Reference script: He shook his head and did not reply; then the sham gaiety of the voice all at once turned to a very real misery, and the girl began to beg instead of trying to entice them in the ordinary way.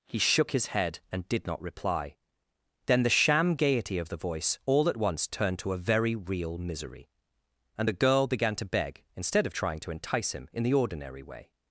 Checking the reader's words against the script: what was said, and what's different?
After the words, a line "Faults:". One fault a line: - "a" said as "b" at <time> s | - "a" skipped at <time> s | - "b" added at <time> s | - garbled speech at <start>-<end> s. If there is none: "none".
He shook his head and did not reply; then the sham gaiety of the voice all at once turned to a very real misery, and the girl began to beg instead of trying to entice him in the ordinary way.
Faults:
- "them" said as "him" at 10.3 s